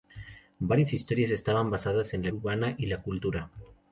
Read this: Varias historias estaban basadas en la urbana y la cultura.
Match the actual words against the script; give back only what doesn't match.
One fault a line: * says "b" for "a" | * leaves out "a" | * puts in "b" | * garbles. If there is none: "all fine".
all fine